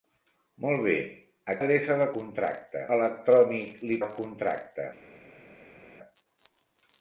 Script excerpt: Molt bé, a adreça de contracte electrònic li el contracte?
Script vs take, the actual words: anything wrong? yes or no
no